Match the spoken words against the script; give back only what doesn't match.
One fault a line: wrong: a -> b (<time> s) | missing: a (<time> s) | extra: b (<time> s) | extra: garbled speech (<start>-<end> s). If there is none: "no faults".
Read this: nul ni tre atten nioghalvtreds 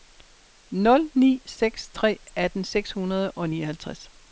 extra: seks (1.5 s)
extra: seks hundrede og (2.6 s)